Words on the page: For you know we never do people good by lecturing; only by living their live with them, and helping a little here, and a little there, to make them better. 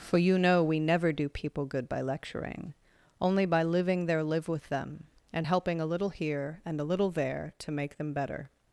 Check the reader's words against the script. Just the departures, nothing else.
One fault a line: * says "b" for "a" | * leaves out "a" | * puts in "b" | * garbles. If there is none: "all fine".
all fine